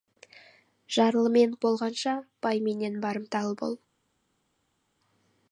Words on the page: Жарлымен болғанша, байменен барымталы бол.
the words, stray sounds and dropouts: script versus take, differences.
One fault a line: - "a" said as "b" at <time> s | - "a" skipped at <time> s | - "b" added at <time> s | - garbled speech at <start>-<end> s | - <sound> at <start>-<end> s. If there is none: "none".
none